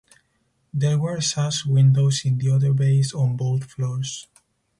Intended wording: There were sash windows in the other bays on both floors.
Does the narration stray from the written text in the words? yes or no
no